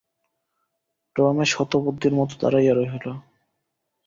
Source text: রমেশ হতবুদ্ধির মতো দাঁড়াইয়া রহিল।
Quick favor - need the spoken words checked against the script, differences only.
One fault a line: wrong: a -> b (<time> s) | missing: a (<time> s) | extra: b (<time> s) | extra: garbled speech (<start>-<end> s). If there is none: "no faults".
no faults